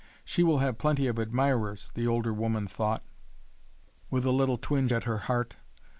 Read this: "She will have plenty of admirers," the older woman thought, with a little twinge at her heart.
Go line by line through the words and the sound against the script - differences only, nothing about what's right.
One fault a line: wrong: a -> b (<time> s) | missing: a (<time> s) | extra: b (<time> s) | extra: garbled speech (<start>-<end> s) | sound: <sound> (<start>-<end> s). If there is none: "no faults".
no faults